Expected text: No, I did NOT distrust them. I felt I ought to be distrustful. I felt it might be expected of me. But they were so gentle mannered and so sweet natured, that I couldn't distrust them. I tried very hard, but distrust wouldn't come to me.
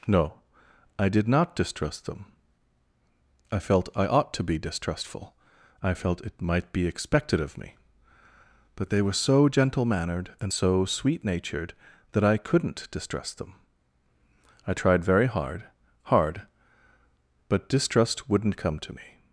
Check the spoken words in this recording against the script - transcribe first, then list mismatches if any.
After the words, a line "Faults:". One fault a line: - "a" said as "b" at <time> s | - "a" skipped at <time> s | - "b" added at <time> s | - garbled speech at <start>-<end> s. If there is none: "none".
No, I did NOT distrust them. I felt I ought to be distrustful. I felt it might be expected of me. But they were so gentle mannered and so sweet natured, that I couldn't distrust them. I tried very hard hard, but distrust wouldn't come to me.
Faults:
- "hard" added at 16.1 s